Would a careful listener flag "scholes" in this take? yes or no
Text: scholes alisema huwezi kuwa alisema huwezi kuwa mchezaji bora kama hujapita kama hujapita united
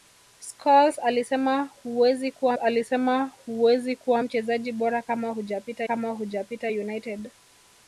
no